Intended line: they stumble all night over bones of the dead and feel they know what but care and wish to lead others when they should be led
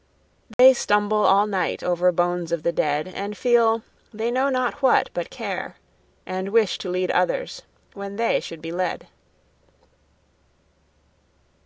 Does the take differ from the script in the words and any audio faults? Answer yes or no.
yes